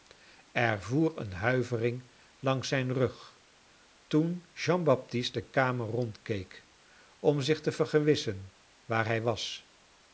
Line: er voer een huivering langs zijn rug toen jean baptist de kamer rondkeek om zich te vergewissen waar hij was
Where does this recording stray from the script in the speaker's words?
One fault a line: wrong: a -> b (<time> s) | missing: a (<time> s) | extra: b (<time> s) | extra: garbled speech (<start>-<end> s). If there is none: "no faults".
no faults